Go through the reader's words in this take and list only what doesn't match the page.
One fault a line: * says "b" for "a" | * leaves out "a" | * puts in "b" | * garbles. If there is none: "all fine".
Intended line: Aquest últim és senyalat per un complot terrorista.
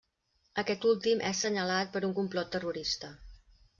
all fine